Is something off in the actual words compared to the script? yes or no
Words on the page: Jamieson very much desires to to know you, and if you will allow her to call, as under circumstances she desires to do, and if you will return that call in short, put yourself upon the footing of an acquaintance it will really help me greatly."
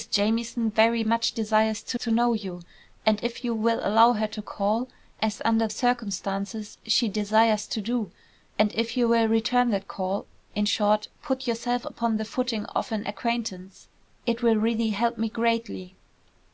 no